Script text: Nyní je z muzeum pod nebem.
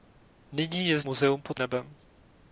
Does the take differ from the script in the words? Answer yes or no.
no